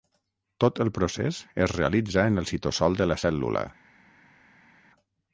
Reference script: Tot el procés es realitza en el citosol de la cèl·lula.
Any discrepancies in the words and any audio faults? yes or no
no